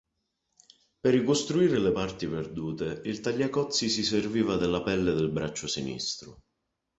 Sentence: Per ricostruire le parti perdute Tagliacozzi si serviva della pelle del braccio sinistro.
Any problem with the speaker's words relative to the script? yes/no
yes